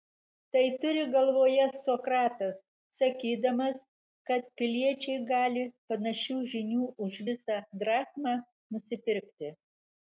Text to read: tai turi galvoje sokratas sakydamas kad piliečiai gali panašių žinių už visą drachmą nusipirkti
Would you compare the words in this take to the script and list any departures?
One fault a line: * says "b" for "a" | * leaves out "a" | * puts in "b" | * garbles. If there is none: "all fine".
all fine